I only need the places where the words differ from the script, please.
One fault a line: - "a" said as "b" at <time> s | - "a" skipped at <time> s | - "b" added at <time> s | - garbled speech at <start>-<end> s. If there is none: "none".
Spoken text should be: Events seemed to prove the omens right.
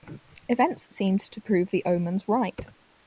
none